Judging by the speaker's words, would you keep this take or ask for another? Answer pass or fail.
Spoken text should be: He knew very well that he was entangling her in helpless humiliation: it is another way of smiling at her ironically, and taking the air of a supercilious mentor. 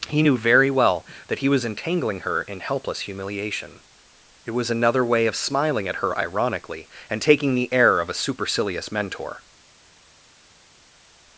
fail